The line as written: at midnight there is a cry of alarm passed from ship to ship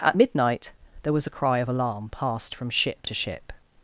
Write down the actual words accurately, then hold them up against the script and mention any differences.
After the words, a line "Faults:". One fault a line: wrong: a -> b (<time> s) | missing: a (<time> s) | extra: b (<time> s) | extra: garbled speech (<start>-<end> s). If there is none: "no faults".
at midnight there was a cry of alarm passed from ship to ship
Faults:
wrong: is -> was (1.1 s)